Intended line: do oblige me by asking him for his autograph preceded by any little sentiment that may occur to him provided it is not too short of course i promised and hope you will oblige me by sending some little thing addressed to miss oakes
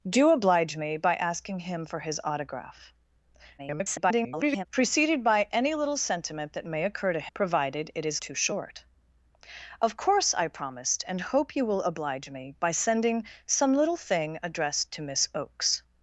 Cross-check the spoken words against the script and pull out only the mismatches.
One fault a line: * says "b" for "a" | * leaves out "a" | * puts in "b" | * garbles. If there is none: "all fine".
* garbles
* leaves out "him"
* leaves out "not"